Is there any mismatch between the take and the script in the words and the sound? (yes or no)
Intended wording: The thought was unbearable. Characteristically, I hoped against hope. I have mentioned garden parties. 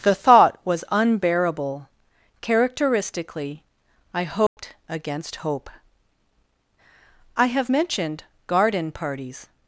yes